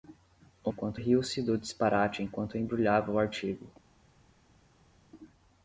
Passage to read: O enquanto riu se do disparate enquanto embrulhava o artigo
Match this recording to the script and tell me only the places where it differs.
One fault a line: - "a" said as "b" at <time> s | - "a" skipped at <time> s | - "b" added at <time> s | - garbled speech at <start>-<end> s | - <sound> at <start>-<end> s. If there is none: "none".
none